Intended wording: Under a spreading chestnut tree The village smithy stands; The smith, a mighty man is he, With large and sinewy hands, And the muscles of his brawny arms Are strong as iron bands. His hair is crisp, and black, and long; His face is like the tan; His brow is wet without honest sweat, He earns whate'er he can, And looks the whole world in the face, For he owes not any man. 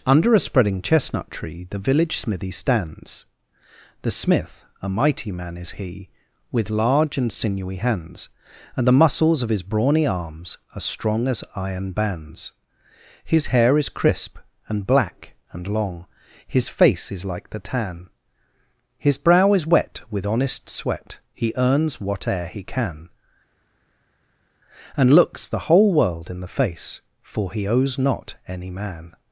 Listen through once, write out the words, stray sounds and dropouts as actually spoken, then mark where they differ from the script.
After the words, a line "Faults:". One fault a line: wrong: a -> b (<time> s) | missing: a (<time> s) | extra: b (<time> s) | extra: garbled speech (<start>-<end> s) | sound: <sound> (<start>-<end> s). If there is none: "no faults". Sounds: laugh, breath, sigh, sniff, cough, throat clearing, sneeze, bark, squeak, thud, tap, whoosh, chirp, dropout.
Under a spreading chestnut tree The village smithy stands; The smith, a mighty man is he, With large and sinewy hands, And the muscles of his brawny arms Are strong as iron bands. His hair is crisp, and black, and long; His face is like the tan; His brow is wet with honest sweat, He earns whate'er he can, And looks the whole world in the face, For he owes not any man.
Faults:
wrong: without -> with (20.1 s)